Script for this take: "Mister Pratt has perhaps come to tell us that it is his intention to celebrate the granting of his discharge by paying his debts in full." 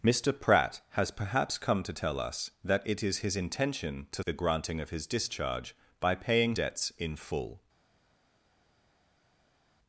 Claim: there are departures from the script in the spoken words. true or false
true